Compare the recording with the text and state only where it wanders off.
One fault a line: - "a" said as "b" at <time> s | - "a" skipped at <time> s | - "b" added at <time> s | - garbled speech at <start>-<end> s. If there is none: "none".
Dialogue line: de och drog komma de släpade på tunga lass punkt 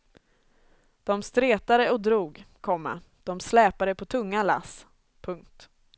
- "stretade" added at 1.2 s